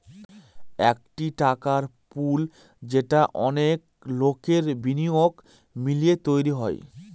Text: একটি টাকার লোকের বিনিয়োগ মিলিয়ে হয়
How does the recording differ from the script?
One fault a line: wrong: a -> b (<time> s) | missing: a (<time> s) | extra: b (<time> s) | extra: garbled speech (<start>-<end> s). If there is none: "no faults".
extra: পুল যেটা অনেক (2.1 s)
extra: তৈরী (6.3 s)